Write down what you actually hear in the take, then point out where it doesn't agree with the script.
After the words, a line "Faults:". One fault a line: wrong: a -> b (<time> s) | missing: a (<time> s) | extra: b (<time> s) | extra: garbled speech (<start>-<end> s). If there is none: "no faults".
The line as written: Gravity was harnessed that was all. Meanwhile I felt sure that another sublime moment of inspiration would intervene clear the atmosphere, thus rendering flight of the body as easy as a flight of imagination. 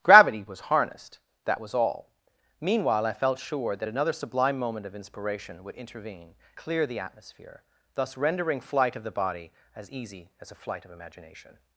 Gravity was harnessed that was all. Meanwhile I felt sure that another sublime moment of inspiration would intervene clear the atmosphere, thus rendering flight of the body as easy as a flight of imagination.
Faults:
no faults